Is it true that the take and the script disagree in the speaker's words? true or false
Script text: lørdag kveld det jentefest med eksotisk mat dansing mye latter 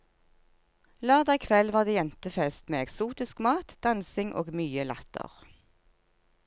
true